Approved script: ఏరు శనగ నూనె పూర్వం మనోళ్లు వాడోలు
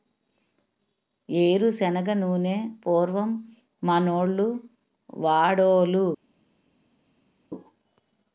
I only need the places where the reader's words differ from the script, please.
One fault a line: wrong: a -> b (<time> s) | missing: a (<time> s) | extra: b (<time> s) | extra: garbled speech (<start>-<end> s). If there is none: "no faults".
no faults